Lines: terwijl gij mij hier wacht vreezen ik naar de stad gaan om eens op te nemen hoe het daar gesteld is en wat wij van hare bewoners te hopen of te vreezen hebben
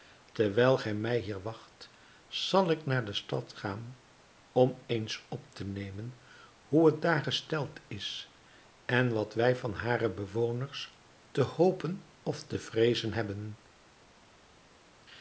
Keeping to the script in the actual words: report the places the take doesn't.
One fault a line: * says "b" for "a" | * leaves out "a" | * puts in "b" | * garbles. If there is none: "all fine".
* says "zal" for "vreezen"